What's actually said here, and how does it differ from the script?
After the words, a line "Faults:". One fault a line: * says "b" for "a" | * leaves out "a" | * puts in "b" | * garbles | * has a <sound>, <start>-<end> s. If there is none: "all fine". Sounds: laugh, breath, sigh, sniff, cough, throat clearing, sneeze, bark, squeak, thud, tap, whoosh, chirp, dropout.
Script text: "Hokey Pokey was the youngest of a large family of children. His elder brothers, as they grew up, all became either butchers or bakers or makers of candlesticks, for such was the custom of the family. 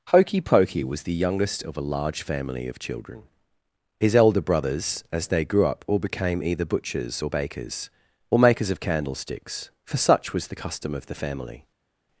"Hokey Pokey was the youngest of a large family of children. His elder brothers, as they grew up, all became either butchers or bakers or makers of candlesticks, for such was the custom of the family.
Faults:
all fine